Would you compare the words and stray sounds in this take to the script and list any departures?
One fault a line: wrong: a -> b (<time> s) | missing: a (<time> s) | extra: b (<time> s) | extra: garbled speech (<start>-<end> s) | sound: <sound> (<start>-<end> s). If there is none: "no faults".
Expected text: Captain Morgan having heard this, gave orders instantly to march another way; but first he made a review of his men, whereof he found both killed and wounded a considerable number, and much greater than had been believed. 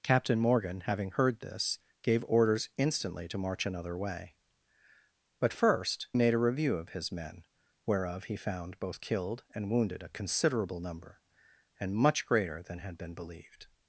missing: he (6.1 s)